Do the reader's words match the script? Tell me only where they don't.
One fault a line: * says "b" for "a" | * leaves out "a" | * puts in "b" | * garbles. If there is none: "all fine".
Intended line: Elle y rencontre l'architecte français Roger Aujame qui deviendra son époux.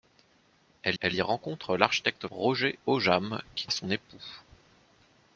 * puts in "elle"
* leaves out "français"
* leaves out "deviendra"